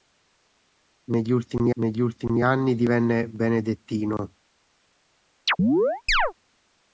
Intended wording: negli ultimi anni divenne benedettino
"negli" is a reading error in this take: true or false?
false